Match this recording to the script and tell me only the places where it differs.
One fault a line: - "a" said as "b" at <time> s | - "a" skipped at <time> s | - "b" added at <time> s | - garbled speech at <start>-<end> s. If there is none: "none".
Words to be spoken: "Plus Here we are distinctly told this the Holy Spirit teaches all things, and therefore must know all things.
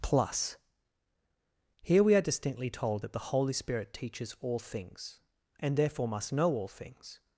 - "this" said as "that" at 3.0 s